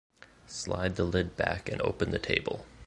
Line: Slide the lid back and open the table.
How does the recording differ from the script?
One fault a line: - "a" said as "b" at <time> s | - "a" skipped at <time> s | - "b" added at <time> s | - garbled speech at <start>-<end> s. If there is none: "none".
none